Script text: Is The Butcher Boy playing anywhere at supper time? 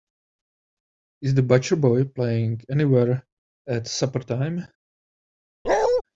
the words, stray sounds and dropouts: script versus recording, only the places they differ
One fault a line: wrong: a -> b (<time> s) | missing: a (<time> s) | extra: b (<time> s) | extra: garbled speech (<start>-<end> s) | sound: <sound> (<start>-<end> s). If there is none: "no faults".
sound: bark (5.7-6.0 s)